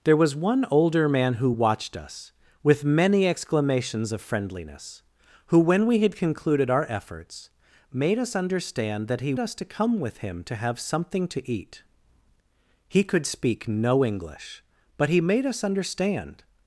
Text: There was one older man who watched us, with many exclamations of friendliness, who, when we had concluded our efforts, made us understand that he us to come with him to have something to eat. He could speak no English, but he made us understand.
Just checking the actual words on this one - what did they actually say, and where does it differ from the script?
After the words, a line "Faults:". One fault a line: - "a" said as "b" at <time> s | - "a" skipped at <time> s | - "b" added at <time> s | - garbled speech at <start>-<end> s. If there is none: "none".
There was one older man who watched us, with many exclamations of friendliness, who, when we had concluded our efforts, made us understand that he us to come with him to have something to eat. He could speak no English, but he made us understand.
Faults:
none